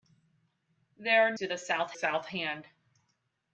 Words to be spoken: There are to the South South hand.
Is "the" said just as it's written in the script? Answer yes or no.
yes